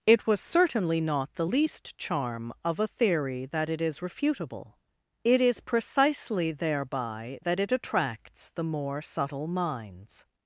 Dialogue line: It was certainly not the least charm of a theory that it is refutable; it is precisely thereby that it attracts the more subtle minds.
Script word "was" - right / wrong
right